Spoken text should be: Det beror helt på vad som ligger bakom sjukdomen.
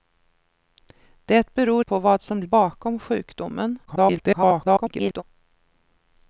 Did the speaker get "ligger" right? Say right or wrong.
wrong